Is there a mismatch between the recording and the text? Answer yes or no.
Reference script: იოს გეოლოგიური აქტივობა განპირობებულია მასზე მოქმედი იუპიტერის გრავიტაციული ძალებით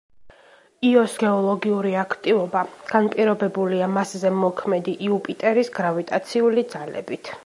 no